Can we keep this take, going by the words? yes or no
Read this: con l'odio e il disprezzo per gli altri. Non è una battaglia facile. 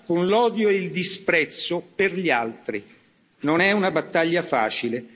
yes